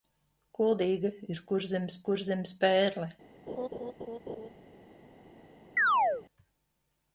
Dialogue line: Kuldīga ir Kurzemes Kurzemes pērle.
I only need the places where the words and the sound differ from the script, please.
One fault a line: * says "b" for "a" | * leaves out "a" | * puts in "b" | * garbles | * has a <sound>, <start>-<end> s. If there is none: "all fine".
* has a laugh, 3.5-4.5 s
* has a chirp, 5.8-6.2 s